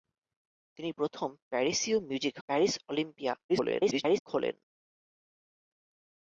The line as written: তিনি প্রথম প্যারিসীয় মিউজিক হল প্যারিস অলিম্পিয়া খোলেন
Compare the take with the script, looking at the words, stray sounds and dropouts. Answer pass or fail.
fail